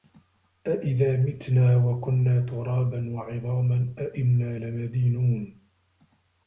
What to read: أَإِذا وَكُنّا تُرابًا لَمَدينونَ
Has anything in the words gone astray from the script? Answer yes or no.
yes